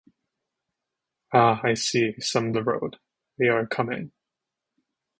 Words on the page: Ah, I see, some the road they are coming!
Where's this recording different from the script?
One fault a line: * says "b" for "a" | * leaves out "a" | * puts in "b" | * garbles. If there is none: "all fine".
all fine